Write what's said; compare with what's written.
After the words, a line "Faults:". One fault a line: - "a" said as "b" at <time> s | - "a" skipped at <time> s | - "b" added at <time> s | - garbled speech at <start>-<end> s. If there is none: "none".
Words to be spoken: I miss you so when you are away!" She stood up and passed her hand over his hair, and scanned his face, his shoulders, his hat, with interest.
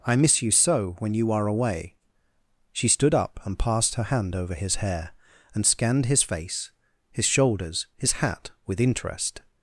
I miss you so when you are away!" She stood up and passed her hand over his hair, and scanned his face, his shoulders, his hat, with interest.
Faults:
none